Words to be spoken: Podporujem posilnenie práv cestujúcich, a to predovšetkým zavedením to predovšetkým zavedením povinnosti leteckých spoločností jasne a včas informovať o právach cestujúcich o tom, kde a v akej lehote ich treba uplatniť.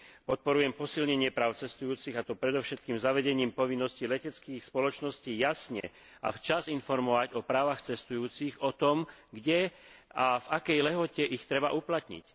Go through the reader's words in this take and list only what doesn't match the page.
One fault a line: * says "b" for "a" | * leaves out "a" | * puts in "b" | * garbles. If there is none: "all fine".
* leaves out "to predovšetkým zavedením"